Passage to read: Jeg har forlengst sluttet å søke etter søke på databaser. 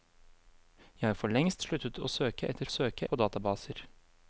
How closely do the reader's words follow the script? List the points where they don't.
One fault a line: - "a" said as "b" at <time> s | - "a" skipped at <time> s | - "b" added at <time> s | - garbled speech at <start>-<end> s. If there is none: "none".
none